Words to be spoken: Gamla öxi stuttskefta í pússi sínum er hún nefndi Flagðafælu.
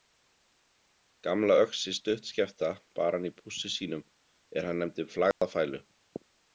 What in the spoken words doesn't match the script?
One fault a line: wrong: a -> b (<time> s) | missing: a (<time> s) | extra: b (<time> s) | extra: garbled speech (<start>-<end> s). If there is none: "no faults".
extra: bar hann (3.0 s)
wrong: hún -> hann (4.7 s)